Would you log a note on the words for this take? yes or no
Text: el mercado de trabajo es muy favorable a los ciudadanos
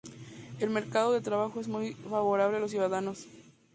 no